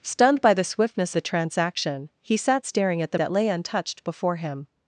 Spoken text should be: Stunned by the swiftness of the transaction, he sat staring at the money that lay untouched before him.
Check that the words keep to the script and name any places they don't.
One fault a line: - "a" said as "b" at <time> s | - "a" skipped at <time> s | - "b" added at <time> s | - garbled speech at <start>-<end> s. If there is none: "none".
- "of" skipped at 1.1 s
- "money" skipped at 3.2 s